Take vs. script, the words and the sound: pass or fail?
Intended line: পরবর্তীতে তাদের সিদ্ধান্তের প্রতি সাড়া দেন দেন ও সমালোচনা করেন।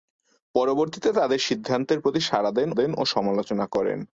pass